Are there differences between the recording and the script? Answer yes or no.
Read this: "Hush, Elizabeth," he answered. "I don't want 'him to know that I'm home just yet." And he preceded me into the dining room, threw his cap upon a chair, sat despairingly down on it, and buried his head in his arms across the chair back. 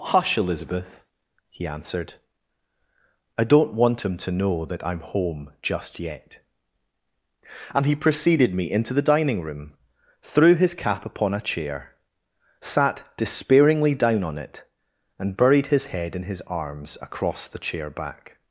no